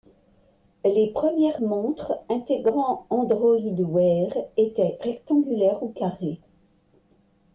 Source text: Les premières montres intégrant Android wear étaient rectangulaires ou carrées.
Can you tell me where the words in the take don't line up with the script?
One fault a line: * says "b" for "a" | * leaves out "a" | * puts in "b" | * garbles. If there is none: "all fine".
all fine